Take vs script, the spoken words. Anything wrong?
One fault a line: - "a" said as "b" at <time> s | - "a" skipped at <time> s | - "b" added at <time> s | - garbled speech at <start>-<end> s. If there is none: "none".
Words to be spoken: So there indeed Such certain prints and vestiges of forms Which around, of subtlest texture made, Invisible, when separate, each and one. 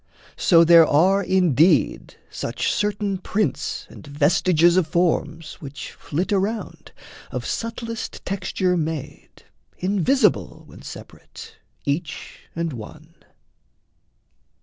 - "are" added at 0.9 s
- "flit" added at 5.9 s